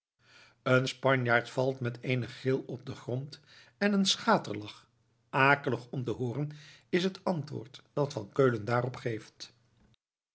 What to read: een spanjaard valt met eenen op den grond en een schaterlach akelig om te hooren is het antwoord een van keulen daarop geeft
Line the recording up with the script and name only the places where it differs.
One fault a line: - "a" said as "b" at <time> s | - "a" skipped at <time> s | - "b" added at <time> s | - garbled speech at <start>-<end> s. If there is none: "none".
- "gil" added at 2.3 s
- "een" said as "dat" at 7.9 s